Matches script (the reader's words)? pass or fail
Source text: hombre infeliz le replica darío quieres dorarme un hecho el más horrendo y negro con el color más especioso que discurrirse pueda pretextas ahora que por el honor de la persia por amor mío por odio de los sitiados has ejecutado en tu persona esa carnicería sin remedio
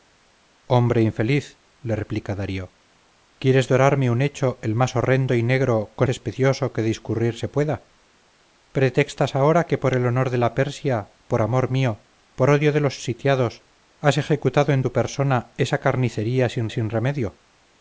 fail